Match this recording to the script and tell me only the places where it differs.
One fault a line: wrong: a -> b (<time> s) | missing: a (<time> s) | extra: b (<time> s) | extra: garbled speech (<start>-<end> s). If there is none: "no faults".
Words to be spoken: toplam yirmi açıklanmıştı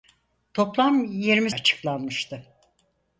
no faults